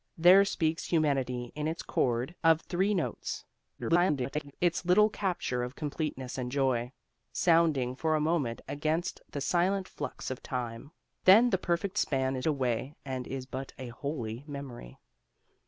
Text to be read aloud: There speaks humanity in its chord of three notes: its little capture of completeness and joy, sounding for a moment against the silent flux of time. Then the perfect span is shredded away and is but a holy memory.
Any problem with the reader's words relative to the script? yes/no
yes